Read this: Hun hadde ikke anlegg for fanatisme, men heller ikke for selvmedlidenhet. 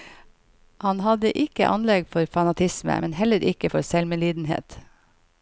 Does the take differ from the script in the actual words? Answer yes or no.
yes